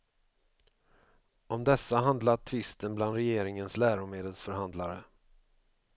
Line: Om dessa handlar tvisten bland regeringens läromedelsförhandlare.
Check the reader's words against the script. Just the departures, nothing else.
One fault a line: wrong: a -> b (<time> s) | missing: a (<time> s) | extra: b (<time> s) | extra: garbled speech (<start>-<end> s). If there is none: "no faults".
no faults